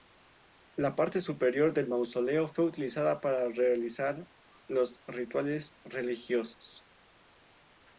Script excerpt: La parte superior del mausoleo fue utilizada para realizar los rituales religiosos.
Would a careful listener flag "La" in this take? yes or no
no